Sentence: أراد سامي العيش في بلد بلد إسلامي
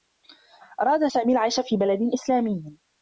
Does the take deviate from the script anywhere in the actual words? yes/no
yes